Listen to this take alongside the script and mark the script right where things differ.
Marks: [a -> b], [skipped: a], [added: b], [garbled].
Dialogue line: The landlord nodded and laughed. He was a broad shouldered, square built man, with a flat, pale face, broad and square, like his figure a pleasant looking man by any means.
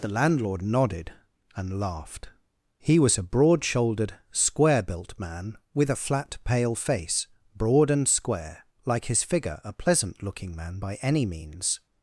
The landlord nodded and laughed. He was a broad shouldered, square built man, with a flat, pale face, broad and square, like his figure a pleasant looking man by any means.